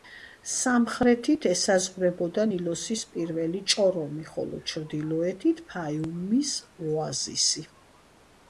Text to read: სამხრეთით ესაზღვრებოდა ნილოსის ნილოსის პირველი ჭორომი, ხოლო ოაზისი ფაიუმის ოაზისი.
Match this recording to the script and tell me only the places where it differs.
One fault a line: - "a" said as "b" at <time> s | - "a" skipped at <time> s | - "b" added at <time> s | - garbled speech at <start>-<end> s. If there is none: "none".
- "ნილოსის" skipped at 3.1 s
- "ოაზისი" said as "ჩრდილოეთით" at 4.7 s